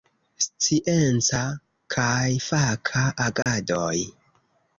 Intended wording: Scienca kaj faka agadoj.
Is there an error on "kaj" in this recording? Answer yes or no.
no